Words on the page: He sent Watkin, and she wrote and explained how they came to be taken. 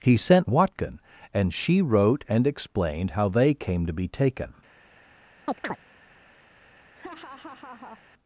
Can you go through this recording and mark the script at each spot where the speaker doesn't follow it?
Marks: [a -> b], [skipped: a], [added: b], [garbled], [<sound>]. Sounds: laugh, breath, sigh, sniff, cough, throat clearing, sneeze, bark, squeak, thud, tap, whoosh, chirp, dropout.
He sent Watkin, and she wrote and explained how they came to be taken. [chirp] [laugh]